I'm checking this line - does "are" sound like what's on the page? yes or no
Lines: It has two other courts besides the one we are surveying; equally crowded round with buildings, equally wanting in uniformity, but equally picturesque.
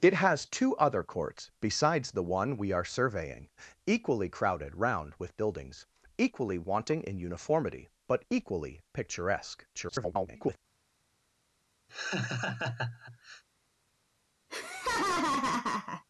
yes